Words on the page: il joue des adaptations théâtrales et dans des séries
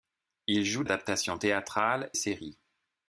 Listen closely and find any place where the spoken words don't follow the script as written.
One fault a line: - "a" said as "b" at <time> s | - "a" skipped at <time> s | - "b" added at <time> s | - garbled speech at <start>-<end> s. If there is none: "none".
- "des" skipped at 0.8 s
- "et dans des" skipped at 2.1 s